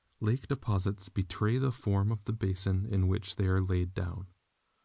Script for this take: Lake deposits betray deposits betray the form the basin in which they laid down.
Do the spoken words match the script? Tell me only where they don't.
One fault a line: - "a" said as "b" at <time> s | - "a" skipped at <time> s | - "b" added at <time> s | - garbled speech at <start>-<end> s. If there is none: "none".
- "deposits betray" skipped at 1.6 s
- "of" added at 2.1 s
- "are" added at 3.5 s